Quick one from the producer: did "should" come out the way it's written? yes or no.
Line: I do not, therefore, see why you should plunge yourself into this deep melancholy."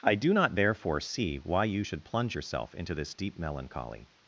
yes